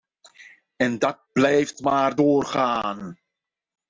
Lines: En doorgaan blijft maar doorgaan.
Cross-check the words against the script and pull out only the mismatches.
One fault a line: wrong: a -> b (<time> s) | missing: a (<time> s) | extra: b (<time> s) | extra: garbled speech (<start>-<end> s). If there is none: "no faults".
wrong: doorgaan -> dat (1.0 s)